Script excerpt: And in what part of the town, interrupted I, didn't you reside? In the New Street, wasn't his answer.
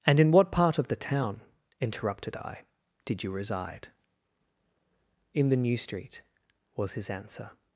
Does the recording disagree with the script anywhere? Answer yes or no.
yes